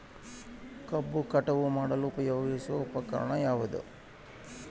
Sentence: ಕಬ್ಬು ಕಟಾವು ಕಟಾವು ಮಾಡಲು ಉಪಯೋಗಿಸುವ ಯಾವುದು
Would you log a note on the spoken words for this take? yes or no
yes